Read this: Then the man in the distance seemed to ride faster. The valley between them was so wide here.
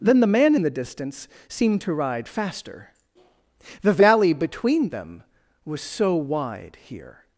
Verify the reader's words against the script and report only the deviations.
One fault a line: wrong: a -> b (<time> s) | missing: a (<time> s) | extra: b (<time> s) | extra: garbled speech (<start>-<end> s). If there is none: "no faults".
no faults